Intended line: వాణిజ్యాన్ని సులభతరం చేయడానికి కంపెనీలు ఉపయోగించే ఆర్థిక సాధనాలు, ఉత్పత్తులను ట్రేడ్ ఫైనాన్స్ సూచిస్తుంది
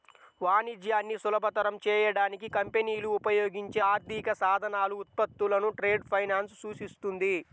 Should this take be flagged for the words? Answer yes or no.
no